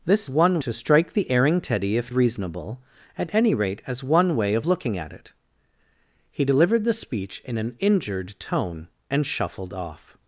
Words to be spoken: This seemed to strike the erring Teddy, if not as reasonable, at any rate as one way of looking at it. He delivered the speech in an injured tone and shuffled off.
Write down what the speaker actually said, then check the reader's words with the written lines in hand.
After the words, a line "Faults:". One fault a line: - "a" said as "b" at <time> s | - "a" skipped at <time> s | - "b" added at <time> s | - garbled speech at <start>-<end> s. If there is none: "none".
This one to strike the erring Teddy, if reasonable, at any rate as one way of looking at it. He delivered the speech in an injured tone and shuffled off.
Faults:
- "seemed" said as "one" at 0.3 s
- "not as" skipped at 2.1 s